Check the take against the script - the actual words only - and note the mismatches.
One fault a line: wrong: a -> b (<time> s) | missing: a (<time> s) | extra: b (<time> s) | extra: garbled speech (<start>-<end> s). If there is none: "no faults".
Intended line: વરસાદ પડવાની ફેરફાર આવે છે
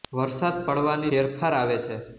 no faults